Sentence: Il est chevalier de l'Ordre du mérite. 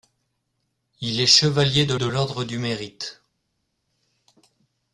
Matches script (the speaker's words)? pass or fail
fail